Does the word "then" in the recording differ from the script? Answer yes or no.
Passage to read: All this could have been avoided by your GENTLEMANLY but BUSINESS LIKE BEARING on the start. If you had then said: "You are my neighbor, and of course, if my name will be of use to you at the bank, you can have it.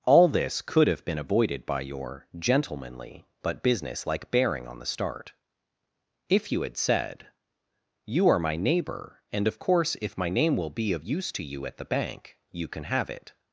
yes